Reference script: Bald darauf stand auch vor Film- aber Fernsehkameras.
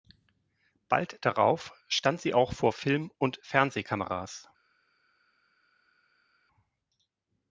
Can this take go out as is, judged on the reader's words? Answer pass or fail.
fail